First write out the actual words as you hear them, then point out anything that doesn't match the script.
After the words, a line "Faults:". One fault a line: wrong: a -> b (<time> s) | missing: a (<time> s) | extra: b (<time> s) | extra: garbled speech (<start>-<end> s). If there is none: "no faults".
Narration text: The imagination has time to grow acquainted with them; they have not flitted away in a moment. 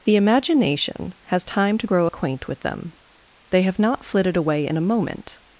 The imagination has time to grow acquaint with them; they have not flitted away in a moment.
Faults:
wrong: acquainted -> acquaint (2.0 s)